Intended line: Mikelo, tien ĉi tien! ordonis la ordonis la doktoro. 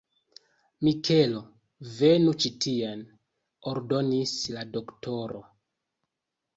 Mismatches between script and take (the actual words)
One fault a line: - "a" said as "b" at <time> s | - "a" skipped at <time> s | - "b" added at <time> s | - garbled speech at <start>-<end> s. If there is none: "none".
- "tien" said as "venu" at 2.0 s
- "ordonis la" skipped at 4.7 s